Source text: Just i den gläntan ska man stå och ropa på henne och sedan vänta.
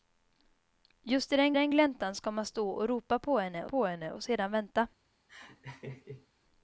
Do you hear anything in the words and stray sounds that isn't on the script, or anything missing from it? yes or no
yes